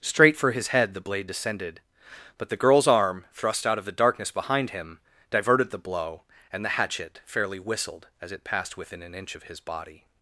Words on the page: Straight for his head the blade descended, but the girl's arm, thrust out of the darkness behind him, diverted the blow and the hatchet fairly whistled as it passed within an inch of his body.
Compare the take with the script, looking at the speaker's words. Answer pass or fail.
pass